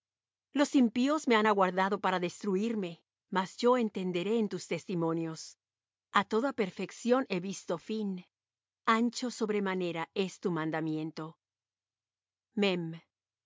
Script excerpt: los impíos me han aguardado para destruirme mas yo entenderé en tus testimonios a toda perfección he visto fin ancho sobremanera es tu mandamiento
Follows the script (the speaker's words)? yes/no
yes